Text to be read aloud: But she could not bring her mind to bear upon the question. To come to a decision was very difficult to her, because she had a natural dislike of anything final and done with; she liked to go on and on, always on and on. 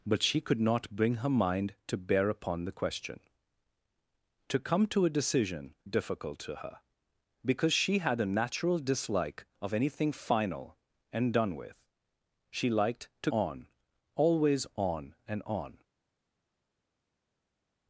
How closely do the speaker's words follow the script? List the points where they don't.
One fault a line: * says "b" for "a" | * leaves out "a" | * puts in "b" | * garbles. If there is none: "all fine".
* leaves out "was very"
* leaves out "go on and"